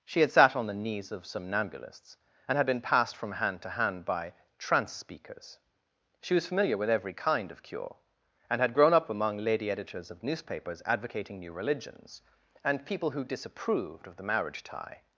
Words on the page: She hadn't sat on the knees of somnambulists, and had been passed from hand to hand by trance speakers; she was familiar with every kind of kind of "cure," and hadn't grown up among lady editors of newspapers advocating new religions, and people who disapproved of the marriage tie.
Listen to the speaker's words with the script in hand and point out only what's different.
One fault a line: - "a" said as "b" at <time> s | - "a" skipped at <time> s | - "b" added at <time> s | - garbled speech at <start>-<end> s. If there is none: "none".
- "hadn't" said as "had" at 0.2 s
- "kind of" skipped at 7.6 s
- "hadn't" said as "had" at 8.6 s